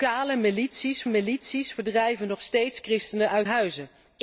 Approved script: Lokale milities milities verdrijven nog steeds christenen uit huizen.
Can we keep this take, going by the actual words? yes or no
yes